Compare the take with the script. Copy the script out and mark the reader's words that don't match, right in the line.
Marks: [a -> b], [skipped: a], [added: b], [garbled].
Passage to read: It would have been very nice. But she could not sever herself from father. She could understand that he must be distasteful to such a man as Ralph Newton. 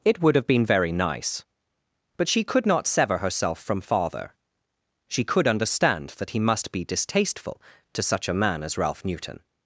It would have been very nice. But she could not sever herself from father. She could understand that he must be distasteful to such a man as Ralph Newton.